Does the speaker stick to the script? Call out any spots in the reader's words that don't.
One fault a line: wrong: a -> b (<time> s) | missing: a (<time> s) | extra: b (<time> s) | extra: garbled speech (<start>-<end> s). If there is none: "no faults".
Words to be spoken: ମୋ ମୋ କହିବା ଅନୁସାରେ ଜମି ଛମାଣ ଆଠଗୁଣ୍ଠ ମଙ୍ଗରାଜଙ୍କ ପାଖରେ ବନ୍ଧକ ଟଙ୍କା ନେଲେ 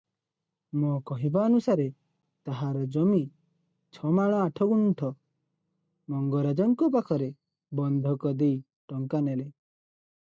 missing: ମୋ (0.9 s)
extra: ତାହାର (2.5 s)
extra: ଦେଇ (8.4 s)